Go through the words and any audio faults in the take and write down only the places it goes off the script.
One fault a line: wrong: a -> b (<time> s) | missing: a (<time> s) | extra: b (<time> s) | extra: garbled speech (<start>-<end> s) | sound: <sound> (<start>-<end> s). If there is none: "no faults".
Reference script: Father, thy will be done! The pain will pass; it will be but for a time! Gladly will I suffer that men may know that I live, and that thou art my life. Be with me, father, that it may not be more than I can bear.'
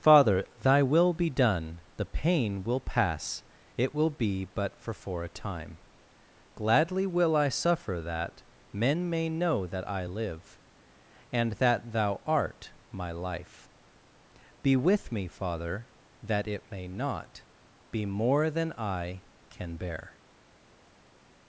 extra: for (5.0 s)